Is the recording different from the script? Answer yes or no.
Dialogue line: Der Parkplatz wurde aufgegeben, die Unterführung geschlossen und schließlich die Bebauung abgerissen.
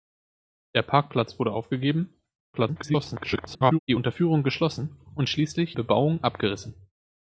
yes